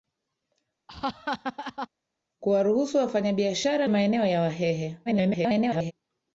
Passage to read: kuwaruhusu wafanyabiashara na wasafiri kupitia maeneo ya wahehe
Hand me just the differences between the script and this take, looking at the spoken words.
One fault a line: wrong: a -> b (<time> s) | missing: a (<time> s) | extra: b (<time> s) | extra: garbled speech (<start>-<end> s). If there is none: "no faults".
missing: na wasafiri kupitia (3.9 s)
extra: garbled speech (5.1-5.9 s)